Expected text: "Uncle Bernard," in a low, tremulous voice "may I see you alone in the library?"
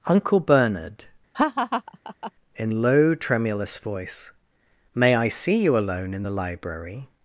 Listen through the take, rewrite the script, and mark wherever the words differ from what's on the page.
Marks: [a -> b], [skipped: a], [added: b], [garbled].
"Uncle Bernard," in [skipped: a] low, tremulous voice "may I see you alone in the library?"